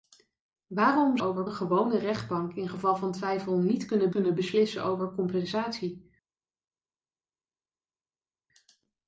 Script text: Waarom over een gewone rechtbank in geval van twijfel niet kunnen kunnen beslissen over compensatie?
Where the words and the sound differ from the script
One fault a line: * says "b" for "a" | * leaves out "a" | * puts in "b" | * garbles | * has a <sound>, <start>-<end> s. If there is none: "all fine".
all fine